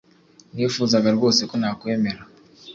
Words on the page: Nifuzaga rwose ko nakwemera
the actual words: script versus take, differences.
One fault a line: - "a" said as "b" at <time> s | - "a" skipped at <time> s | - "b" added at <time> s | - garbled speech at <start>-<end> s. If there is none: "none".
none